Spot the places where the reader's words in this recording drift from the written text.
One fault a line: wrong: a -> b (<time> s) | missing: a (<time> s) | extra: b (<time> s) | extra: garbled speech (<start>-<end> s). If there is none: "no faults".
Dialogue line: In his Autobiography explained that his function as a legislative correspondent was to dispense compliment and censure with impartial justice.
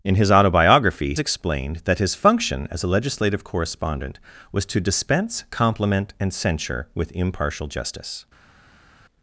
no faults